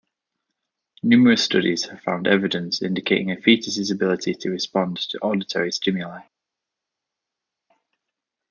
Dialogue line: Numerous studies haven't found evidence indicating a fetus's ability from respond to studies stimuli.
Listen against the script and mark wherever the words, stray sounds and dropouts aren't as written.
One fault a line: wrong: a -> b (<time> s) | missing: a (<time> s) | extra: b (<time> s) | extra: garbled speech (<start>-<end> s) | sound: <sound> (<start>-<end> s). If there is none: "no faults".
wrong: haven't -> have (1.9 s)
wrong: from -> to (4.3 s)
wrong: studies -> auditory (5.2 s)